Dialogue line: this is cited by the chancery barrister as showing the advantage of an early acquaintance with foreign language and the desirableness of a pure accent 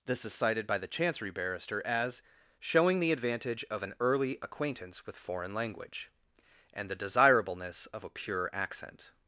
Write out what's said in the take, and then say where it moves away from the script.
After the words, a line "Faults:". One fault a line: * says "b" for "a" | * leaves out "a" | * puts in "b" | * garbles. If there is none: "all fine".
this is cited by the chancery barrister as showing the advantage of an early acquaintance with foreign language and the desirableness of a pure accent
Faults:
all fine